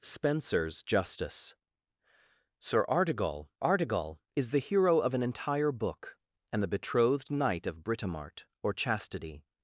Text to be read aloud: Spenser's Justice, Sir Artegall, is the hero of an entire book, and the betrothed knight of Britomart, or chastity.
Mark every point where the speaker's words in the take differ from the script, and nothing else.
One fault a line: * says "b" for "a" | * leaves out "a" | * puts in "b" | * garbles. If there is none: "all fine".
* puts in "Artegall"